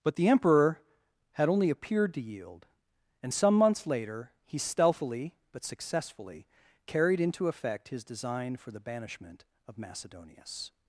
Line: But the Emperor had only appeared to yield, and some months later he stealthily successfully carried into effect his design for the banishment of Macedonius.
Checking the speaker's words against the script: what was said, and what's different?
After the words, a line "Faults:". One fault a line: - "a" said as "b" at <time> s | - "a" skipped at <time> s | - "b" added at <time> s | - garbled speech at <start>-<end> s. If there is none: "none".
But the Emperor had only appeared to yield, and some months later he stealthily but successfully carried into effect his design for the banishment of Macedonius.
Faults:
- "but" added at 5.5 s